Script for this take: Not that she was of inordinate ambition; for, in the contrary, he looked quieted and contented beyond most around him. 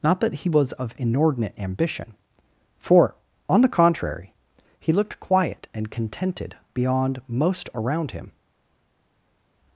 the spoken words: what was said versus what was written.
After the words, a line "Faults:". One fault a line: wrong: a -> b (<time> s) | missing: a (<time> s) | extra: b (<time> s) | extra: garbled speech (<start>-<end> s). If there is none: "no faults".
Not that he was of inordinate ambition; for, on the contrary, he looked quiet and contented beyond most around him.
Faults:
wrong: she -> he (0.3 s)
wrong: in -> on (3.5 s)
wrong: quieted -> quiet (5.2 s)